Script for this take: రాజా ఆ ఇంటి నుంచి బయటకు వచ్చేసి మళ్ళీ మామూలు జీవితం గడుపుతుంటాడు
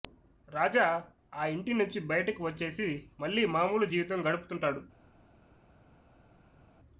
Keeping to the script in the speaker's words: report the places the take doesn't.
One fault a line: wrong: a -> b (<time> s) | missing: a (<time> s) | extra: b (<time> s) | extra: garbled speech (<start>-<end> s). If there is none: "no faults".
no faults